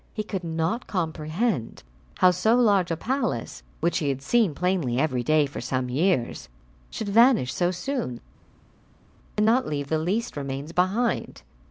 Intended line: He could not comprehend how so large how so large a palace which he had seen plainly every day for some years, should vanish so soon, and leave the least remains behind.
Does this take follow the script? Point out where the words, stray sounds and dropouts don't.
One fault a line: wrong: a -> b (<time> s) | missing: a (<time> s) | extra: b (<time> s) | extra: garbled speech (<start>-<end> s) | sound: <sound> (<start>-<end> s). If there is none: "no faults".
missing: how so large (2.9 s)
extra: not (9.5 s)